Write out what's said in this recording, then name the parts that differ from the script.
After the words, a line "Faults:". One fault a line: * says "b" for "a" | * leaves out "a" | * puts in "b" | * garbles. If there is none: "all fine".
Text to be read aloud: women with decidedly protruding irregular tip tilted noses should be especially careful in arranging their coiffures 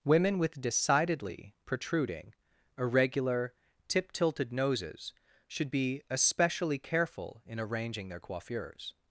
women with decidedly protruding irregular tip tilted noses should be especially careful in arranging their coiffures
Faults:
all fine